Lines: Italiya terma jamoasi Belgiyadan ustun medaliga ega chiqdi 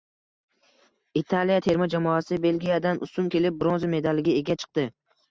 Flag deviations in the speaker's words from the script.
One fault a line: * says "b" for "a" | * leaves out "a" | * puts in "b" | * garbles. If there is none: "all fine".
* puts in "kelib bronza"